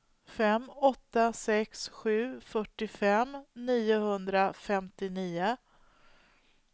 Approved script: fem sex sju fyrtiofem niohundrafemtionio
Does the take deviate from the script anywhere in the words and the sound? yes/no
yes